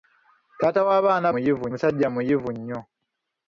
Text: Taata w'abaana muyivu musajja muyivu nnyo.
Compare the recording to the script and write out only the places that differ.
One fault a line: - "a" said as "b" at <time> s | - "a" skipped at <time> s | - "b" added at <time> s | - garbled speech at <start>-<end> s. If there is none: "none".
none